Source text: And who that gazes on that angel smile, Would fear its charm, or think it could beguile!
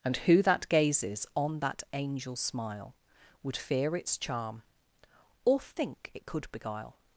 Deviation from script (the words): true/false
false